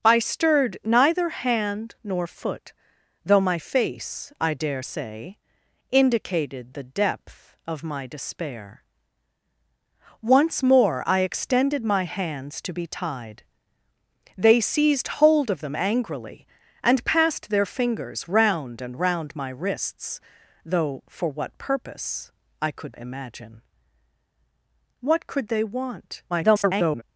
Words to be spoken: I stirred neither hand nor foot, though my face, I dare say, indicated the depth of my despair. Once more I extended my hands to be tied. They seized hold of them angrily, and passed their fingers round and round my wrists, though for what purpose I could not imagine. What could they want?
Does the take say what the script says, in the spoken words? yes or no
no